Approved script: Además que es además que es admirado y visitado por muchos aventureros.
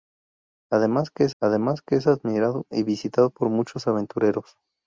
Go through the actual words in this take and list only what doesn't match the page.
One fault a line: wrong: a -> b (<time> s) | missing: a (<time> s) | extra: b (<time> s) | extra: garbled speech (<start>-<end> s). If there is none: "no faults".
no faults